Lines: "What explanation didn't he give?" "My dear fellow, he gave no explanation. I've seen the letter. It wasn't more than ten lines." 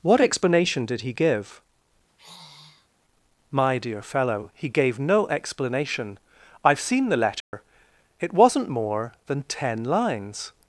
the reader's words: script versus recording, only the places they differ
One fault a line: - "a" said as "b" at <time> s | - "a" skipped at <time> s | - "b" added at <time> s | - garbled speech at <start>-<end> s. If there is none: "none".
- "didn't" said as "did" at 0.8 s